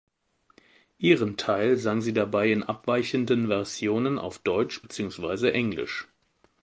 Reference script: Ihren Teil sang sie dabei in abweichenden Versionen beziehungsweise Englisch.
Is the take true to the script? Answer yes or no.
no